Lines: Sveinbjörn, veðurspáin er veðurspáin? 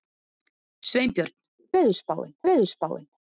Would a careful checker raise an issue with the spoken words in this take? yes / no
no